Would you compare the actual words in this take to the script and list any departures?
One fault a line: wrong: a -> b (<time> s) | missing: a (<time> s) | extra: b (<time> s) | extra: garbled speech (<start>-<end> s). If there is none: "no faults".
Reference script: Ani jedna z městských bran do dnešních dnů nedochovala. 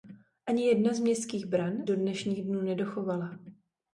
no faults